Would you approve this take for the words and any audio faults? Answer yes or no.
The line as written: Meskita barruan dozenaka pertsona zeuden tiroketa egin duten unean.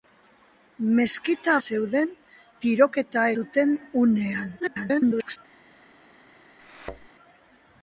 no